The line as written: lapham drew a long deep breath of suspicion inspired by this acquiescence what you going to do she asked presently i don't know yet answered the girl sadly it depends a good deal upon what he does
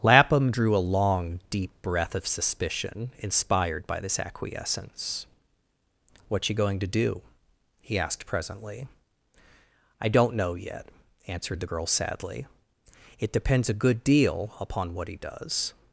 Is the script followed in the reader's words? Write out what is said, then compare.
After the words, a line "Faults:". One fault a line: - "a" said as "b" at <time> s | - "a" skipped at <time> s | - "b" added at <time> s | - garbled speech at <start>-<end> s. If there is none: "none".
lapham drew a long deep breath of suspicion inspired by this acquiescence what you going to do he asked presently i don't know yet answered the girl sadly it depends a good deal upon what he does
Faults:
- "she" said as "he" at 7.8 s